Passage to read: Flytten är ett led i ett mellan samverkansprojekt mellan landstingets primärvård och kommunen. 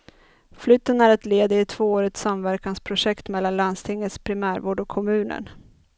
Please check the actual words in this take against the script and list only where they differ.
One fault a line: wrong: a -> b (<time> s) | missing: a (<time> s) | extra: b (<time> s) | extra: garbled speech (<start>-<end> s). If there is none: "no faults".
wrong: mellan -> tvåårigt (1.7 s)